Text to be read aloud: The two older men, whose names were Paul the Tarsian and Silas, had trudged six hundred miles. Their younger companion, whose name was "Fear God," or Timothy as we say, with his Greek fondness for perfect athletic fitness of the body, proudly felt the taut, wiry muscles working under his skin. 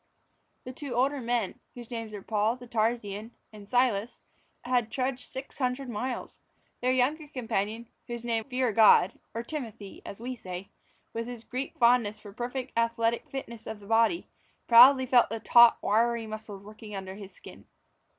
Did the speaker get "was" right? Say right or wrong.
wrong